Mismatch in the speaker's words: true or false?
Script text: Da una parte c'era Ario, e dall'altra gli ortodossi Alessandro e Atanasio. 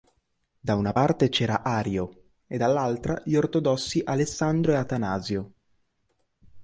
false